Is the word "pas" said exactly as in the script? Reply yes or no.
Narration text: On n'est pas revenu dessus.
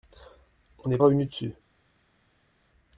no